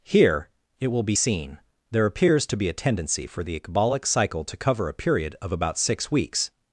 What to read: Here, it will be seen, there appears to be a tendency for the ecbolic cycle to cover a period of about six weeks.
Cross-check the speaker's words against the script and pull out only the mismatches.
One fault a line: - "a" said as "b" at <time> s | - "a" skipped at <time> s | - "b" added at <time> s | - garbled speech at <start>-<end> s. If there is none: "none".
none